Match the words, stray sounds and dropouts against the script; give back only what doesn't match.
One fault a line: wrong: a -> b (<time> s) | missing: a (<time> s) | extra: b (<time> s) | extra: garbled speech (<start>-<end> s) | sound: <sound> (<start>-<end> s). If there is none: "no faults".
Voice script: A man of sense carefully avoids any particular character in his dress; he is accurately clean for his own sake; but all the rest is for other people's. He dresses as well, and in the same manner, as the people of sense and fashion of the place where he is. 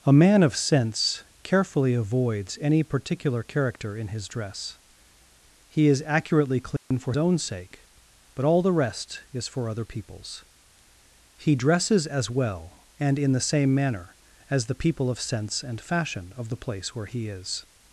sound: dropout (6.8-6.9 s)
missing: his (7.1 s)